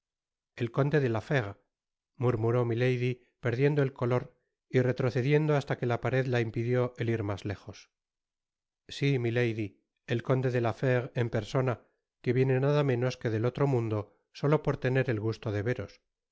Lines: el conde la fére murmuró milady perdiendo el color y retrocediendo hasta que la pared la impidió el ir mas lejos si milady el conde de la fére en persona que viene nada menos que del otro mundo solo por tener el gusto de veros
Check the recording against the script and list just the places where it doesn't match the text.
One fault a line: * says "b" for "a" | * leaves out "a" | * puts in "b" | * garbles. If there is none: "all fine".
* puts in "de"